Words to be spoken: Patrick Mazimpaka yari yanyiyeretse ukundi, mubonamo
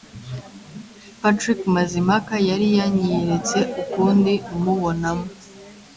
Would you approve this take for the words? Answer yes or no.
yes